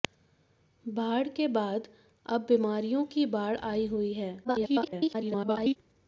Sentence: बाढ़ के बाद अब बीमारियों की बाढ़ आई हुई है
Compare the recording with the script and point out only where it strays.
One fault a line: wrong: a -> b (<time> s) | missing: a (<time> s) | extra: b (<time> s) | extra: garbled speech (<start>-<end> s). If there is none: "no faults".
extra: garbled speech (4.4-5.8 s)